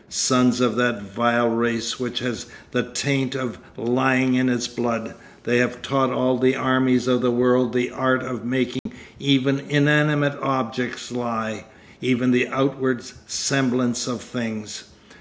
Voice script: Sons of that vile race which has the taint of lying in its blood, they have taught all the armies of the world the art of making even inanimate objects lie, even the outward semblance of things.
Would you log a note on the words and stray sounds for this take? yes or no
yes